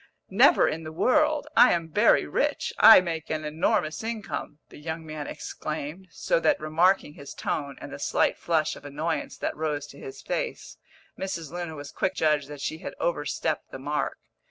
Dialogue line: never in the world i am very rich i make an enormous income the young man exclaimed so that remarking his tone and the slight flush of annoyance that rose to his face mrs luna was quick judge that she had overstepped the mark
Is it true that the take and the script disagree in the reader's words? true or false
false